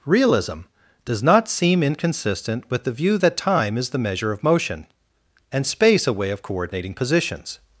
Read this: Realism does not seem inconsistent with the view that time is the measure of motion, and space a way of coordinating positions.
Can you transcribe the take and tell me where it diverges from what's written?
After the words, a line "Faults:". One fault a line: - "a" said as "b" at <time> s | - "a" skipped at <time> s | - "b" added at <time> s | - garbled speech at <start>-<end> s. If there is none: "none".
Realism does not seem inconsistent with the view that time is the measure of motion, and space a way of coordinating positions.
Faults:
none